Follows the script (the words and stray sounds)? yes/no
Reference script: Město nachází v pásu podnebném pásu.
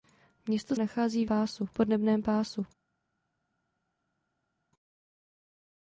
yes